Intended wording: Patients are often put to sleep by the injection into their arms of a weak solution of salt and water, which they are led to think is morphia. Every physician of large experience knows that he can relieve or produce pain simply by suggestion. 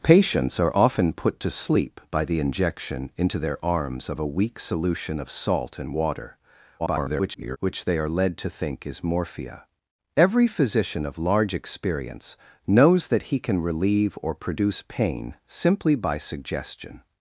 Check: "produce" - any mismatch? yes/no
no